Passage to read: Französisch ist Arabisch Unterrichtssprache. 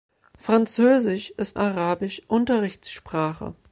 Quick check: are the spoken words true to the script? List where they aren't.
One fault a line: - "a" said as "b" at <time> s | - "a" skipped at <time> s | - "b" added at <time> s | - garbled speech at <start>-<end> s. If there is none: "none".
none